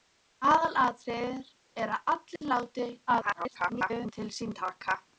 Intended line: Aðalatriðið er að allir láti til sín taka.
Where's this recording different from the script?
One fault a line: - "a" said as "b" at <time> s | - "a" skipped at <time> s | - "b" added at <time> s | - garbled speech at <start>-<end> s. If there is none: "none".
- garbled speech at 3.1-4.1 s